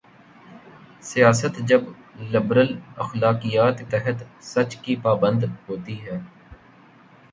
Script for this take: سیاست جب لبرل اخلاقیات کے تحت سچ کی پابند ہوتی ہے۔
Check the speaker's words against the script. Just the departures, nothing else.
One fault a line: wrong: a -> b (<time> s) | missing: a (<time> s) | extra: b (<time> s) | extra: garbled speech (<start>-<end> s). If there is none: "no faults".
missing: کے (3.8 s)